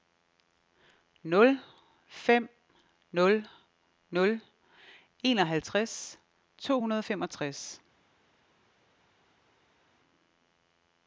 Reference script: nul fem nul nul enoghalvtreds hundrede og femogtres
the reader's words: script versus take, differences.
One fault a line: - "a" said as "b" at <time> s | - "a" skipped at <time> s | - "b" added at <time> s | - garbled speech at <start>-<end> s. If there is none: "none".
- "to" added at 6.6 s